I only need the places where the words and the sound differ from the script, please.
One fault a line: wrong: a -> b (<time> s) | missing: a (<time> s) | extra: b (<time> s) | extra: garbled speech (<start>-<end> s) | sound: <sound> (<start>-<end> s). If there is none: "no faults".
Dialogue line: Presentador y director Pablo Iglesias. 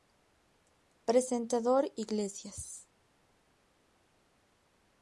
missing: y director Pablo (1.9 s)